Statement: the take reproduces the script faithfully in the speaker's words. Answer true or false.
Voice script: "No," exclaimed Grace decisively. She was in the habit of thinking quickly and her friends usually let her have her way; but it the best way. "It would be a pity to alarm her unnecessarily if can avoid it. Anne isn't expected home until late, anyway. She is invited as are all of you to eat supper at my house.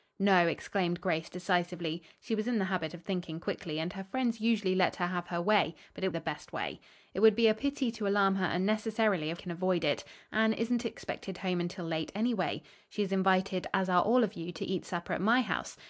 true